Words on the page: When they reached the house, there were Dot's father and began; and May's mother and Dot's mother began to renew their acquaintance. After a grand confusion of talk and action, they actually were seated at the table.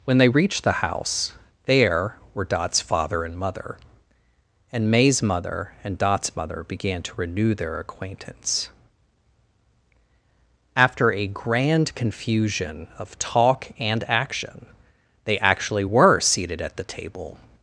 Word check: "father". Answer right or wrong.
right